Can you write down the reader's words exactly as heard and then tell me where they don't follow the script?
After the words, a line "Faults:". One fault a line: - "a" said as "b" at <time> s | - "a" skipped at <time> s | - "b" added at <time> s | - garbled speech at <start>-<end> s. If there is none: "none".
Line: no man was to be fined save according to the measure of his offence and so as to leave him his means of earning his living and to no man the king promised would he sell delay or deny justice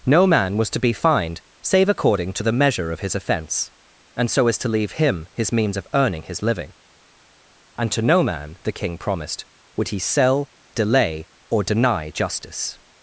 no man was to be fined save according to the measure of his offence and so as to leave him his means of earning his living and to no man the king promised would he sell delay or deny justice
Faults:
none